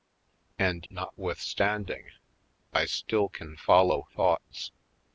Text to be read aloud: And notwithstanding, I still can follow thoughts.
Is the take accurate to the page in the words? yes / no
yes